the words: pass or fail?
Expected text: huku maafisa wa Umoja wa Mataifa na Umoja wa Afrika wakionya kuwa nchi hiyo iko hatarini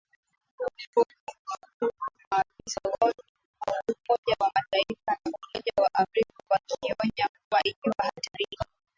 fail